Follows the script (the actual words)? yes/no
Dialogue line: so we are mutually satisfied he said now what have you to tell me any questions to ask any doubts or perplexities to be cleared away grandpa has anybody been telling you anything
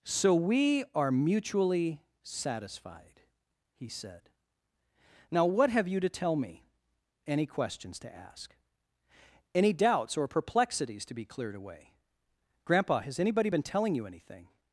yes